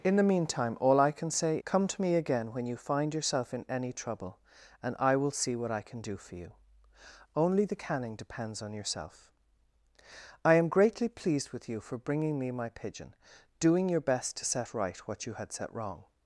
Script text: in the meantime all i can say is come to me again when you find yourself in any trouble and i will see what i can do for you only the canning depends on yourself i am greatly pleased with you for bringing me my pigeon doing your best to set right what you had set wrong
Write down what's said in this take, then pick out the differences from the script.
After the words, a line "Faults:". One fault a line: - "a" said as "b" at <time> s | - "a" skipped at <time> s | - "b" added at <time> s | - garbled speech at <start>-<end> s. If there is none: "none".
in the meantime all i can say come to me again when you find yourself in any trouble and i will see what i can do for you only the canning depends on yourself i am greatly pleased with you for bringing me my pigeon doing your best to set right what you had set wrong
Faults:
- "is" skipped at 1.6 s